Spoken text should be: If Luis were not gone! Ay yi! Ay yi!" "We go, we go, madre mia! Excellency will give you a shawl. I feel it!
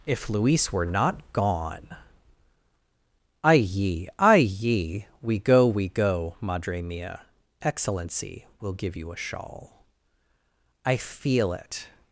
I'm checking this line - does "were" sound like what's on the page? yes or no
yes